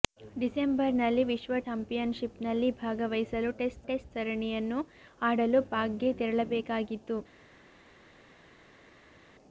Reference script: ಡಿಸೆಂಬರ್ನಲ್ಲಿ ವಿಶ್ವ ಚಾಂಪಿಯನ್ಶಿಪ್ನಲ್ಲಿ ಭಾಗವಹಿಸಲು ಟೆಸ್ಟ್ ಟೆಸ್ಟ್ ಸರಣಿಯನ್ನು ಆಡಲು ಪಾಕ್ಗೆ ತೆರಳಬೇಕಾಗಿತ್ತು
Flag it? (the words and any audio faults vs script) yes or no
no